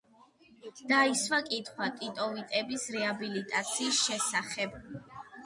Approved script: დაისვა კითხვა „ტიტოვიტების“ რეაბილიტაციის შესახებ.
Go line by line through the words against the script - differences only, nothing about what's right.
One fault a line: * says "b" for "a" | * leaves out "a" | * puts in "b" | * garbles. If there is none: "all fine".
all fine